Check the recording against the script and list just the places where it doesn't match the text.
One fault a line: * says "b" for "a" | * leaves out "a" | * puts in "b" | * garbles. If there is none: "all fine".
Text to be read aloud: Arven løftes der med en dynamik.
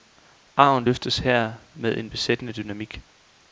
* says "her" for "der"
* puts in "besættende"